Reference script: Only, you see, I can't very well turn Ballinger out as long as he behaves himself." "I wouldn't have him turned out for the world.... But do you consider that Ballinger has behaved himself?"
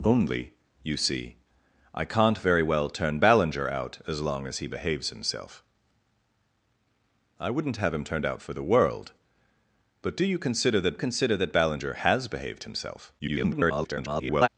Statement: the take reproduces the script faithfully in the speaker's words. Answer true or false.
false